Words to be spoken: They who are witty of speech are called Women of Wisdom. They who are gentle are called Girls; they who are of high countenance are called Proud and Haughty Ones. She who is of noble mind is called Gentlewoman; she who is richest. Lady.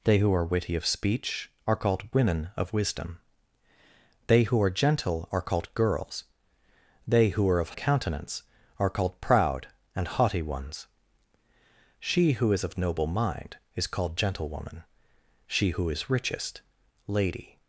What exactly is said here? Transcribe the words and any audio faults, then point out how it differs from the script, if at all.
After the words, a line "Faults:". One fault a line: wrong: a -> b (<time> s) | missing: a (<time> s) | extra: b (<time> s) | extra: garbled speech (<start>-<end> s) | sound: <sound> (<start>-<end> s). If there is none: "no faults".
They who are witty of speech are called Women of Wisdom. They who are gentle are called Girls; they who are of countenance are called Proud and Haughty Ones. She who is of noble mind is called Gentlewoman; she who is richest. Lady.
Faults:
missing: high (7.8 s)